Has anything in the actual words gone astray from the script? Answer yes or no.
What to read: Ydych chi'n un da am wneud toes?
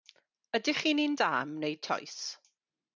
no